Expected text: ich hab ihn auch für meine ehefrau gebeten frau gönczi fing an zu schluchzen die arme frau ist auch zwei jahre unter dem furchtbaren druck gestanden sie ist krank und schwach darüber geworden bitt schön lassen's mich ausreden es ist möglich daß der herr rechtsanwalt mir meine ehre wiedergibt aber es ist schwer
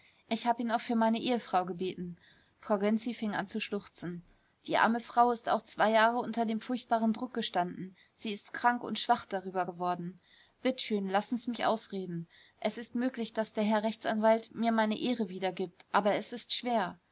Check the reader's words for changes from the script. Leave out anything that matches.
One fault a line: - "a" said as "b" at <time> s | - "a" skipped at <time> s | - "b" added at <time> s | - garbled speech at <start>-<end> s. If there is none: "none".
none